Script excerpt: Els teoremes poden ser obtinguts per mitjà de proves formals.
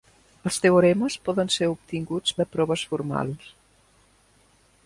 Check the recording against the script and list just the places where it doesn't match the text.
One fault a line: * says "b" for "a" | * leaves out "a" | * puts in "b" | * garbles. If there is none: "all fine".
* leaves out "per mitjà"